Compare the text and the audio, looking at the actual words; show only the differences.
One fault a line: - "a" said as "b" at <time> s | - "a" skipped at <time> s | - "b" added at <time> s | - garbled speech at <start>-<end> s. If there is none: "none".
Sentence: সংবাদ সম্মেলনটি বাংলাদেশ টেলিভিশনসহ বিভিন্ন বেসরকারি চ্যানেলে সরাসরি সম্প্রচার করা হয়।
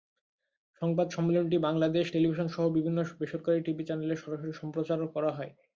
- "টিভি" added at 3.7 s